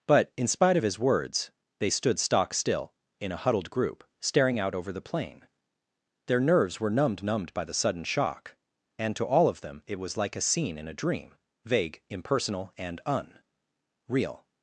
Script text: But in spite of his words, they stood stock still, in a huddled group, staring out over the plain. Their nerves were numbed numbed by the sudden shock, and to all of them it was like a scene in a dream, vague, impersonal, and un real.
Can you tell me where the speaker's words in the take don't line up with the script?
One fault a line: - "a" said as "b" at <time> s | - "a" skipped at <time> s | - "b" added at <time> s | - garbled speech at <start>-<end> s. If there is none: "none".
none